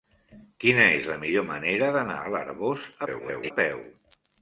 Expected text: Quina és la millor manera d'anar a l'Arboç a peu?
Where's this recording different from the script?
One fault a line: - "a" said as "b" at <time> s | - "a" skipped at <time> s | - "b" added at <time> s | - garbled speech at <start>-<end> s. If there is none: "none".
- garbled speech at 3.1-3.5 s